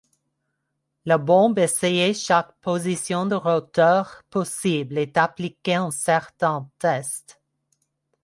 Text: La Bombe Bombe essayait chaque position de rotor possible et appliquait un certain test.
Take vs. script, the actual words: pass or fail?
fail